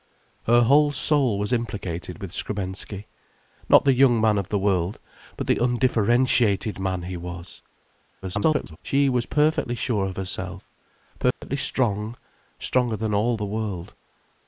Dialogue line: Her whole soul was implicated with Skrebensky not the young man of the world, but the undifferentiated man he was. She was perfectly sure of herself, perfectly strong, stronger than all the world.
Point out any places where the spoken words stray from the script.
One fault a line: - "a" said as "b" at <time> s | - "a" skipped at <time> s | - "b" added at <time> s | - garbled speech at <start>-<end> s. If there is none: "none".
- garbled speech at 8.2-8.8 s